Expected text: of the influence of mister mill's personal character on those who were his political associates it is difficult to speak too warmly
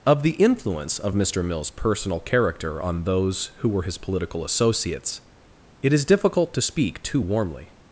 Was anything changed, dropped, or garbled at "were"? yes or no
no